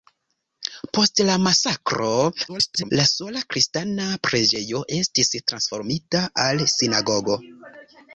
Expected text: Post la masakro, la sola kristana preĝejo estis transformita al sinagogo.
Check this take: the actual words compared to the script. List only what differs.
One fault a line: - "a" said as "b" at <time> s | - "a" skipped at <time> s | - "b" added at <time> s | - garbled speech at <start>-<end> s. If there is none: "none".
- garbled speech at 2.5-2.9 s